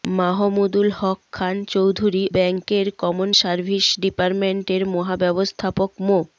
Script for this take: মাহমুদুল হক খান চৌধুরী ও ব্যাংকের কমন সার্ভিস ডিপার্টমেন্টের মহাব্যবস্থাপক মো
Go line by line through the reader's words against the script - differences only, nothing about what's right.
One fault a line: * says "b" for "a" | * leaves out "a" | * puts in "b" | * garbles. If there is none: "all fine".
* leaves out "ও"